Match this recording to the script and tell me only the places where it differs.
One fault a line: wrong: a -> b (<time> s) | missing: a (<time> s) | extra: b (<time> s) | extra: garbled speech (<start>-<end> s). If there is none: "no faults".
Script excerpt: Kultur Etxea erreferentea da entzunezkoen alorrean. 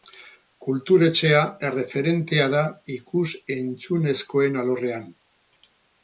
extra: ikus (3.0 s)